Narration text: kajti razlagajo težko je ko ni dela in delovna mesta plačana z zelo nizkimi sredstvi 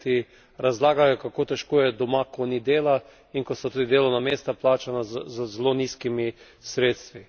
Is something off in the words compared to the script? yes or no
yes